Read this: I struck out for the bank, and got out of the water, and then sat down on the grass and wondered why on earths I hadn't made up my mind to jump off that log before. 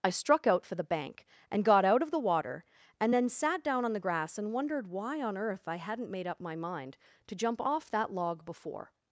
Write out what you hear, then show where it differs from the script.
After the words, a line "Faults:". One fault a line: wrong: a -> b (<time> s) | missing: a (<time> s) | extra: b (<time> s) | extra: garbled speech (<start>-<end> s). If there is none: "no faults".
I struck out for the bank, and got out of the water, and then sat down on the grass and wondered why on earth I hadn't made up my mind to jump off that log before.
Faults:
wrong: earths -> earth (5.4 s)